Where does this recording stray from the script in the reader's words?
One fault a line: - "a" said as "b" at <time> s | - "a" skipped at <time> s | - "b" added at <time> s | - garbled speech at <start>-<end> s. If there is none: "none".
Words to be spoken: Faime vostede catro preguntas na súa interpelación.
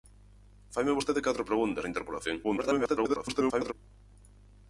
- "na" skipped at 1.8 s
- garbled speech at 2.4-3.7 s